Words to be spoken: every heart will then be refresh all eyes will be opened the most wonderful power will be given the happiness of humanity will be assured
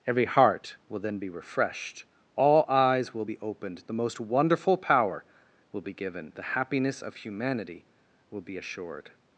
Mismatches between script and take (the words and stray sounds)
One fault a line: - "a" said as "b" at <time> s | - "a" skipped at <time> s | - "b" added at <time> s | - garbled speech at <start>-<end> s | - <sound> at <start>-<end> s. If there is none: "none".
- "refresh" said as "refreshed" at 1.3 s